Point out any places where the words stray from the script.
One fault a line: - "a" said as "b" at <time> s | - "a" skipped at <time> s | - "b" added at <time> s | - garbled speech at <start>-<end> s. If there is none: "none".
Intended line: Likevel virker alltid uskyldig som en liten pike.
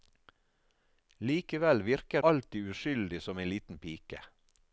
none